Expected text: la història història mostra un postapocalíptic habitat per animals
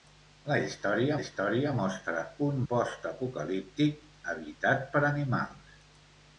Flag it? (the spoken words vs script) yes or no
no